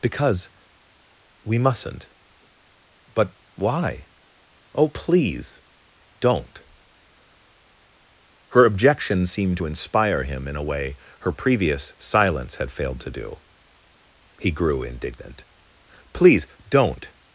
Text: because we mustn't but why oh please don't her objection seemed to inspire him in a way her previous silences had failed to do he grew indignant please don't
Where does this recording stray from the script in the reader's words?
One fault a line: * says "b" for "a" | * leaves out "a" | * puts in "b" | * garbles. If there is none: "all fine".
* says "silence" for "silences"